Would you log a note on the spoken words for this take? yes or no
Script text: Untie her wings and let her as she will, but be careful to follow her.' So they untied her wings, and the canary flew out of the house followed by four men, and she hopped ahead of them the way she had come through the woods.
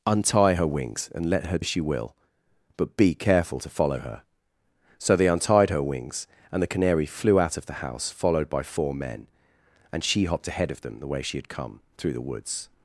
no